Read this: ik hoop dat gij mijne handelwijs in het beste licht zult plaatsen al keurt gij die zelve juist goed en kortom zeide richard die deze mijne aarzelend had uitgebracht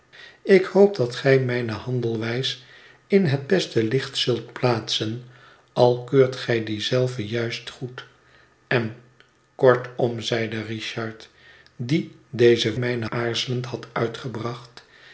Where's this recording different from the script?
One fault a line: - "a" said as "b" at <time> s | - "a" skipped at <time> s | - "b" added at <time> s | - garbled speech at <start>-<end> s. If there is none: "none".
none